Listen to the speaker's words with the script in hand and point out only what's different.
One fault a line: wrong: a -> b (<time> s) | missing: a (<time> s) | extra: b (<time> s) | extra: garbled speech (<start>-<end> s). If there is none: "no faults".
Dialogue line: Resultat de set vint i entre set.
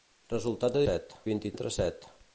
no faults